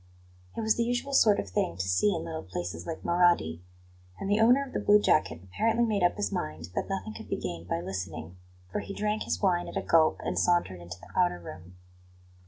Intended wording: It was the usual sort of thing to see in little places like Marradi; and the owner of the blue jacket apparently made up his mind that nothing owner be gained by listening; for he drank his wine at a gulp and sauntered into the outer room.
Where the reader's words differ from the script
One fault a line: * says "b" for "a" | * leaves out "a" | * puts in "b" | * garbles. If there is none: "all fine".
* says "could" for "owner"